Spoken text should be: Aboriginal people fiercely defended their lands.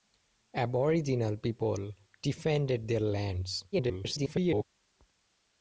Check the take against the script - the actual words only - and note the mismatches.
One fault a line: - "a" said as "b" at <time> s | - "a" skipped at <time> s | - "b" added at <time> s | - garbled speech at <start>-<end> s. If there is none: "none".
- "fiercely" skipped at 1.9 s
- garbled speech at 3.7-4.6 s